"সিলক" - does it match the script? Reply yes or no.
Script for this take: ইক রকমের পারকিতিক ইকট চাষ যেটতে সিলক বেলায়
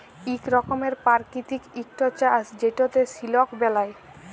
yes